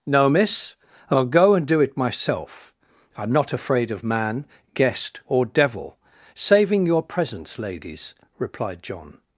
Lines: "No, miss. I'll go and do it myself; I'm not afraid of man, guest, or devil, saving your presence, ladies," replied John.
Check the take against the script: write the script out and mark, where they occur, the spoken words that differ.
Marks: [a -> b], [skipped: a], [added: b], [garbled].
"No, miss. I'll go and do it myself; I'm not afraid of man, guest, or devil, saving your presence, ladies," replied John.